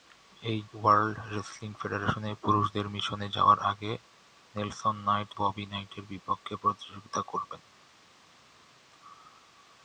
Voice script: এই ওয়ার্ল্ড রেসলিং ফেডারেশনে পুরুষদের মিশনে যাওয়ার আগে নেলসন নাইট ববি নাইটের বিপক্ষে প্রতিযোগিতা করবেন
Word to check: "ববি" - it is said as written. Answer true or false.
true